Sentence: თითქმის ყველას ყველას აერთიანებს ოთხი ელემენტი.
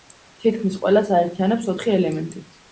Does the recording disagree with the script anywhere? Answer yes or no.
yes